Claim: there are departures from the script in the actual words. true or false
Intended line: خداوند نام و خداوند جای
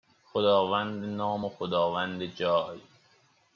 false